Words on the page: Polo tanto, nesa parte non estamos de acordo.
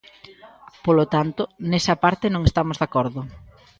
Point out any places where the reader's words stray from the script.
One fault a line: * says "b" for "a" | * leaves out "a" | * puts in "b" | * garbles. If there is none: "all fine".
all fine